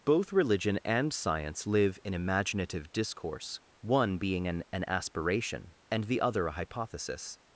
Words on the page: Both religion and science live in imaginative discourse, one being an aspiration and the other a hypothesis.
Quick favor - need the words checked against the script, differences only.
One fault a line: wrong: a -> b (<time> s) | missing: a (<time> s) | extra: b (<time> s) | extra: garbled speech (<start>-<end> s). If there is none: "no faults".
extra: an (4.7 s)